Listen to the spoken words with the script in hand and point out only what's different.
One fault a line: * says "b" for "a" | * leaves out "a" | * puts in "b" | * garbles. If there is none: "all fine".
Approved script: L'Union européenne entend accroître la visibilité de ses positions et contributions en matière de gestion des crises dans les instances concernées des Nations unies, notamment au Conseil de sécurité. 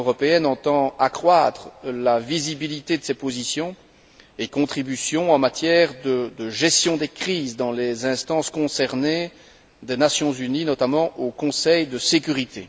all fine